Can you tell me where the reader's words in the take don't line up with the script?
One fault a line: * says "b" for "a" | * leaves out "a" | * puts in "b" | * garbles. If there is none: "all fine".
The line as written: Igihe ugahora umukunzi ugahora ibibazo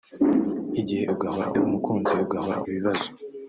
all fine